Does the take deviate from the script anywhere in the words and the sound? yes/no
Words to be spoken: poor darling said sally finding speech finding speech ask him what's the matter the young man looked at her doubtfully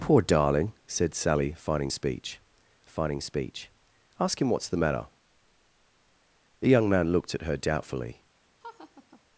yes